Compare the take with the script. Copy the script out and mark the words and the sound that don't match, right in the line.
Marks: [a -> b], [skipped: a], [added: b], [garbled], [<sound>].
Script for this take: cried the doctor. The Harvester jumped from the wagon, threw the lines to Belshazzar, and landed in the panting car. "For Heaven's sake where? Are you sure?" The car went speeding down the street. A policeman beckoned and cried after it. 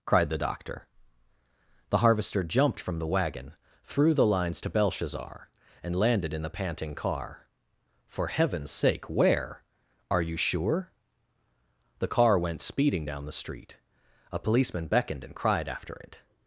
cried the doctor. The Harvester jumped from the wagon, threw the lines to Belshazzar, and landed in the panting car. "For Heaven's sake where? Are you sure?" The car went speeding down the street. A policeman beckoned and cried after it.